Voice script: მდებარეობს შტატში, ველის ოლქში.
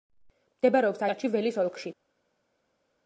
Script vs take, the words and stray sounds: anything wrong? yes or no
no